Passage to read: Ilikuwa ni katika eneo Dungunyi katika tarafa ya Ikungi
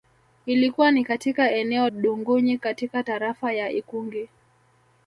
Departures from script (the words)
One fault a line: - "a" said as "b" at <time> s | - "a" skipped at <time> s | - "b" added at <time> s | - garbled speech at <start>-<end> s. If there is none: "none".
none